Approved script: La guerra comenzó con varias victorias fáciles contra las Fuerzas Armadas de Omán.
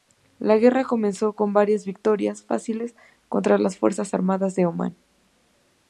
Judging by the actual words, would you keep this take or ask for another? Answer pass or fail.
pass